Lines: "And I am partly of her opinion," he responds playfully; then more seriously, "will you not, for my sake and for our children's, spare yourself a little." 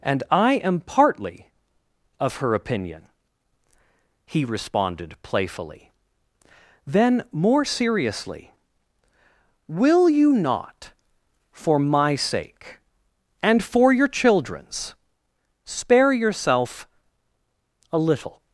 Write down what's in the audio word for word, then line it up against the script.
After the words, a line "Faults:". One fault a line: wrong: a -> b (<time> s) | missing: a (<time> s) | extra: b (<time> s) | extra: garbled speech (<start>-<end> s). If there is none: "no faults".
"And I am partly of her opinion," he responded playfully; then more seriously, "will you not, for my sake and for your children's, spare yourself a little."
Faults:
wrong: responds -> responded (4.4 s)
wrong: our -> your (13.9 s)